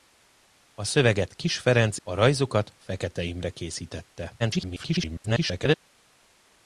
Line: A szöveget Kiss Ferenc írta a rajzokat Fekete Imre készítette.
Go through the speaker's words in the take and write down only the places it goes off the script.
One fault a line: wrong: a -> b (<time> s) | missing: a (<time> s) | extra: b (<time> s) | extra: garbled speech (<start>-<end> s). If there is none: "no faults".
missing: írta (2.0 s)
extra: garbled speech (4.4-5.8 s)